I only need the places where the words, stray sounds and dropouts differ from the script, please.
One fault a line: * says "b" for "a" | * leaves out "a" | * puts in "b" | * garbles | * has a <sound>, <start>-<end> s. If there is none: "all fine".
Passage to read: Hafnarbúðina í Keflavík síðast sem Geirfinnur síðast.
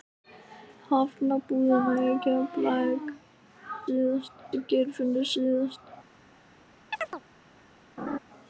* has a chirp, 6.9-7.2 s
* has a laugh, 8.0-8.2 s